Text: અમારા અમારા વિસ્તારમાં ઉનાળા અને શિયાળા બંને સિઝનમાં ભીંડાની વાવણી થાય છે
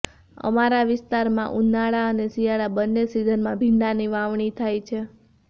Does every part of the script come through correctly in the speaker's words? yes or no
no